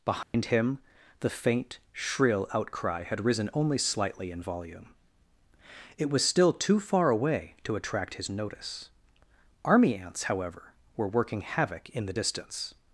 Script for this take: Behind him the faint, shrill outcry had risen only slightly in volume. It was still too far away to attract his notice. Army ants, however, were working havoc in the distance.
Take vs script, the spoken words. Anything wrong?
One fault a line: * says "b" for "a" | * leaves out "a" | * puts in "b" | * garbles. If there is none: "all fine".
all fine